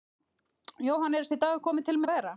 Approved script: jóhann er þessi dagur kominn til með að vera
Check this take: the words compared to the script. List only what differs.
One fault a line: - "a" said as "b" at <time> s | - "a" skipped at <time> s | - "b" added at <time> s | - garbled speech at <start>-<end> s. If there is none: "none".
- "með" skipped at 2.0 s